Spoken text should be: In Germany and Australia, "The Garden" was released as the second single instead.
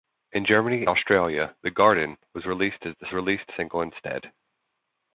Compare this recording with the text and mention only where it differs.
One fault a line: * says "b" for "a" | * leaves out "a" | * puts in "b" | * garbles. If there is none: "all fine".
* leaves out "and"
* says "released" for "second"